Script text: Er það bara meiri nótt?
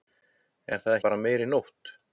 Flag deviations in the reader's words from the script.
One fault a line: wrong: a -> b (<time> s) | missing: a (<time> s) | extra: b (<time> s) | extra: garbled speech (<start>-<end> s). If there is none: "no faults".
no faults